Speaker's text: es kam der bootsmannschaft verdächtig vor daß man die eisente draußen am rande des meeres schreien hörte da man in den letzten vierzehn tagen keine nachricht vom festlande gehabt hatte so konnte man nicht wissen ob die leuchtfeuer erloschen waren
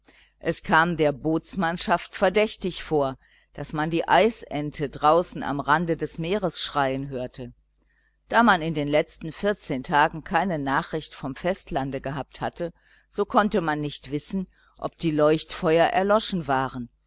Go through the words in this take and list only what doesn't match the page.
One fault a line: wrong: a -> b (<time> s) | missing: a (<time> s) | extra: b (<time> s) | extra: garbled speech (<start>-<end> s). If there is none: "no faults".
no faults